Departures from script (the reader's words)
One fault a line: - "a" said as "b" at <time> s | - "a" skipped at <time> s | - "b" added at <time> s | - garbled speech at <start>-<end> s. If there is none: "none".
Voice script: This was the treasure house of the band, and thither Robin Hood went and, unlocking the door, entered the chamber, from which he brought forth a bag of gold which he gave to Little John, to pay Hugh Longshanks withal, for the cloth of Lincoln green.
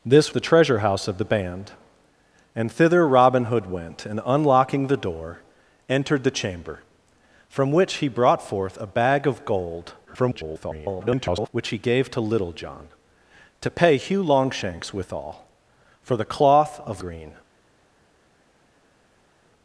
- "was" skipped at 0.3 s
- garbled speech at 10.1-11.5 s
- "Lincoln" skipped at 17.0 s